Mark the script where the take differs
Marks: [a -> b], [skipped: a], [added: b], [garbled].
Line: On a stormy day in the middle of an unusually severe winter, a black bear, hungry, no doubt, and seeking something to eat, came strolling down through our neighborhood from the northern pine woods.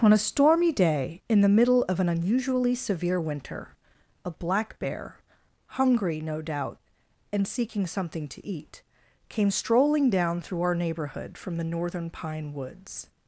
On a stormy day in the middle of an unusually severe winter, a black bear, hungry, no doubt, and seeking something to eat, came strolling down through our neighborhood from the northern pine woods.